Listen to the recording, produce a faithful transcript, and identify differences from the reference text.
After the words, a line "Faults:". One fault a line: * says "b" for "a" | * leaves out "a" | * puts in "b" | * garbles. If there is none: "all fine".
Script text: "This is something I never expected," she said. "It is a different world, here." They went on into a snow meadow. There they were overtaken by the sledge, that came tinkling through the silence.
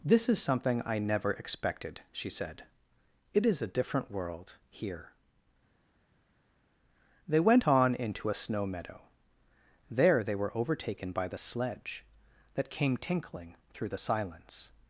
"This is something I never expected," she said. "It is a different world, here." They went on into a snow meadow. There they were overtaken by the sledge, that came tinkling through the silence.
Faults:
all fine